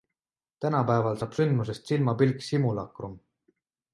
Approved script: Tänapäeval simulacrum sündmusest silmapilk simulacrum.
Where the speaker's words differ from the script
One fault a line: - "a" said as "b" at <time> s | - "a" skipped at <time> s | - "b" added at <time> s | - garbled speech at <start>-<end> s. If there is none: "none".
- "simulacrum" said as "saab" at 1.2 s